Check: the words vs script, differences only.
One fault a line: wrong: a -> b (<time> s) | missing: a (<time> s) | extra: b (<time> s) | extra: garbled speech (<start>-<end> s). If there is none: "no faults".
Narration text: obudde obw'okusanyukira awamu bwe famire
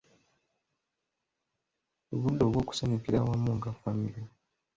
wrong: bwe -> nga (3.6 s)